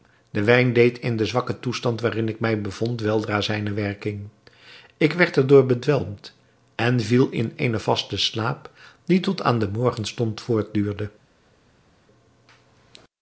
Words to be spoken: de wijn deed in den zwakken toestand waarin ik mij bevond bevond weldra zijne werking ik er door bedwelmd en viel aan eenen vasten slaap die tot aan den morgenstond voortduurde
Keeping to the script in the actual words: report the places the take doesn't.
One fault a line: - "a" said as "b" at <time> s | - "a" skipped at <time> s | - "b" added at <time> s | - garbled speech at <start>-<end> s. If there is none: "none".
- "bevond" skipped at 3.0 s
- "werd" added at 5.1 s
- "aan" said as "in" at 7.3 s